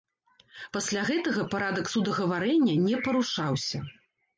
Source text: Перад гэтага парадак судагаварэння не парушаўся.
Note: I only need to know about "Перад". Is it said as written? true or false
false